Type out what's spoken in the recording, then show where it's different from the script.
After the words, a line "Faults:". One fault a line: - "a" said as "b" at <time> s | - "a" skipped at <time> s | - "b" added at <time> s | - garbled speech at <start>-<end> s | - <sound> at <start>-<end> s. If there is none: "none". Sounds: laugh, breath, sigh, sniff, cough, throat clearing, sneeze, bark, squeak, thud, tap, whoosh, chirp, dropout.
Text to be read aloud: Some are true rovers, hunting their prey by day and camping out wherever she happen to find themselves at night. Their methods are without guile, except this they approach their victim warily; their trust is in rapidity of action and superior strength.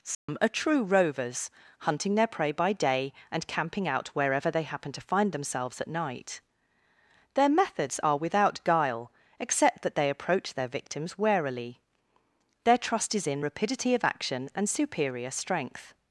Some are true rovers, hunting their prey by day and camping out wherever they happen to find themselves at night. Their methods are without guile, except that they approach their victims warily; their trust is in rapidity of action and superior strength.
Faults:
- dropout at 0.1-0.3 s
- "she" said as "they" at 4.5 s
- "this" said as "that" at 9.8 s
- "victim" said as "victims" at 10.7 s